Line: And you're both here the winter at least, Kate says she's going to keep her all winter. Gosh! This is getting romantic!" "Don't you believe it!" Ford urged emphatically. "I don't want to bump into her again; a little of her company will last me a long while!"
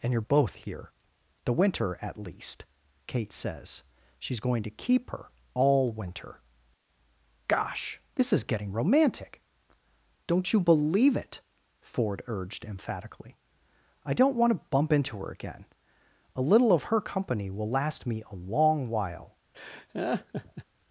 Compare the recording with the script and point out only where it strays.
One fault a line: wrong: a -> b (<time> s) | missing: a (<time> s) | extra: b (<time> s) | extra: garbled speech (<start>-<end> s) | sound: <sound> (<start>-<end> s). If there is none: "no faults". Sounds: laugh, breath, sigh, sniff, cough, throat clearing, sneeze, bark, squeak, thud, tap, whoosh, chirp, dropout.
sound: laugh (19.5-20.6 s)